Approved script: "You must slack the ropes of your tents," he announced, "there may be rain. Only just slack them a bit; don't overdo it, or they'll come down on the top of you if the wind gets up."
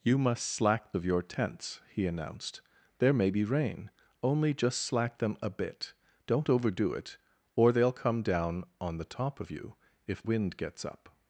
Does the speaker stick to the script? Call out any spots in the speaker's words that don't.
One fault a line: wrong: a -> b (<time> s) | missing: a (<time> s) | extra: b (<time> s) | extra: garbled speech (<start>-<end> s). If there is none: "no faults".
missing: the ropes (0.9 s)
missing: the (10.2 s)